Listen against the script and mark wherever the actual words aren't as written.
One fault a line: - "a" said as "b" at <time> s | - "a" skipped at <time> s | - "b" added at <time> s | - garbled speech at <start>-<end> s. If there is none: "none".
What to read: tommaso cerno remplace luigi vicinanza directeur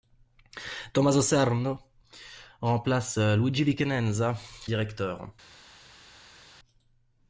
none